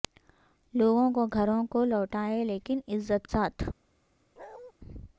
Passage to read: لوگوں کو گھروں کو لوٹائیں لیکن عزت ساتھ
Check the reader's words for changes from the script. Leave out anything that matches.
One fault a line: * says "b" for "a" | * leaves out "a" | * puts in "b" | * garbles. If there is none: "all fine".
all fine